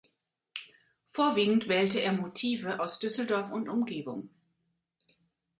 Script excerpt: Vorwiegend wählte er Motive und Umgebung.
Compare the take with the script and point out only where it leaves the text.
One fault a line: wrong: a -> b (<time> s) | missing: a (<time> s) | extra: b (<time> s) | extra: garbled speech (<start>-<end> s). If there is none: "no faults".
extra: aus Düsseldorf (2.8 s)